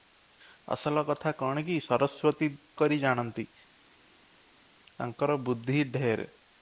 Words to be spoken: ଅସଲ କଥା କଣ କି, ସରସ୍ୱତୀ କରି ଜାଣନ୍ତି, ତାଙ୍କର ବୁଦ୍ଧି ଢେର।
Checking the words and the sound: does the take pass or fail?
pass